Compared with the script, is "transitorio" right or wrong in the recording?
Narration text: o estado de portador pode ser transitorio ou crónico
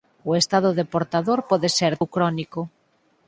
wrong